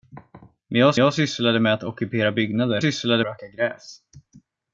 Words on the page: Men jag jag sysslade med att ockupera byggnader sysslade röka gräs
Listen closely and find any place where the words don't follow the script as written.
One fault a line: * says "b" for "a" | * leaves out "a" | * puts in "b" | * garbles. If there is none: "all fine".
all fine